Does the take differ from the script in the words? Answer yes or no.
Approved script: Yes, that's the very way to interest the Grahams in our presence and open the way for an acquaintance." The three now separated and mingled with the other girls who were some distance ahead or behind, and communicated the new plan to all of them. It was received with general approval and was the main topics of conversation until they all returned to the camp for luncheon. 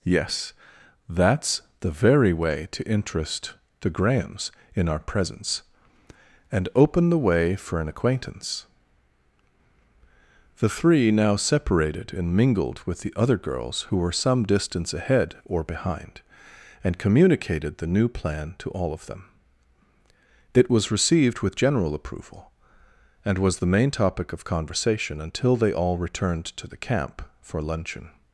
yes